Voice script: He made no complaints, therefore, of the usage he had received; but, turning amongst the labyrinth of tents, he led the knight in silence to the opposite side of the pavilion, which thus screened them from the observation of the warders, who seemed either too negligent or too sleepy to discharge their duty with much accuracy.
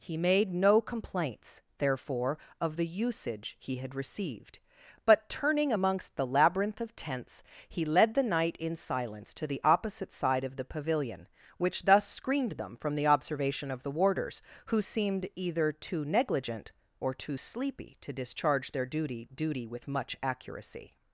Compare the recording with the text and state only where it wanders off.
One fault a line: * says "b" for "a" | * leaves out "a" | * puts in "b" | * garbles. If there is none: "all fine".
* puts in "duty"